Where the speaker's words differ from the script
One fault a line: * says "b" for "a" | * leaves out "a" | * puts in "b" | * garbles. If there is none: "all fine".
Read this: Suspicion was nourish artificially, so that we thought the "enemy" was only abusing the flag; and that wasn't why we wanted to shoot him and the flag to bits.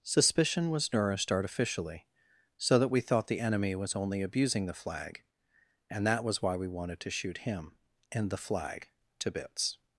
* says "nourished" for "nourish"
* says "was" for "wasn't"